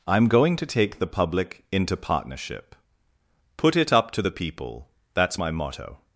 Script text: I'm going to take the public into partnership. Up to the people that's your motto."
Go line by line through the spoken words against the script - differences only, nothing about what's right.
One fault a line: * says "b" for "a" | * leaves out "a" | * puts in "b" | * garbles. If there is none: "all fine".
* puts in "Put it"
* says "my" for "your"